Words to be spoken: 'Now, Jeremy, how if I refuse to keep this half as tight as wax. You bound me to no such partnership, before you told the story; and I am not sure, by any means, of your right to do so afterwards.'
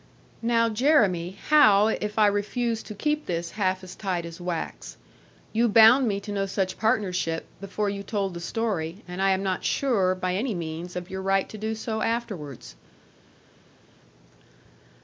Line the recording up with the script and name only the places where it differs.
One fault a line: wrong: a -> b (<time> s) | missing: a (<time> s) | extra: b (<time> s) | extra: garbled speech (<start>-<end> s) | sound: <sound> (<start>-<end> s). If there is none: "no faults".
no faults